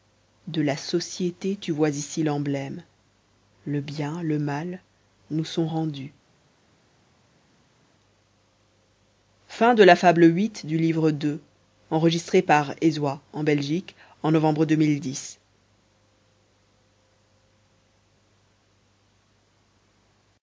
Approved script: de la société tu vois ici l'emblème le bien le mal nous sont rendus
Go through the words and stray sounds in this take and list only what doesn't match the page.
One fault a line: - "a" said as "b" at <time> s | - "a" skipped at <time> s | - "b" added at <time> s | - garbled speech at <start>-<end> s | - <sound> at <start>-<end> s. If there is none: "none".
none